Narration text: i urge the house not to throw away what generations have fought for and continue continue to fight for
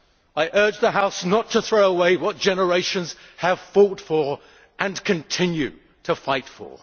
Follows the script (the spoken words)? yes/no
no